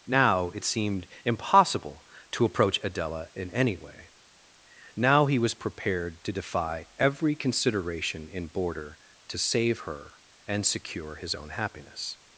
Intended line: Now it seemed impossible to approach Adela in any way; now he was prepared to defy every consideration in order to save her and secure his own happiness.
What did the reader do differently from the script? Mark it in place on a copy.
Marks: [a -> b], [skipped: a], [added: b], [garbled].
Now it seemed impossible to approach Adela in any way; now he was prepared to defy every consideration in [order -> border] to save her and secure his own happiness.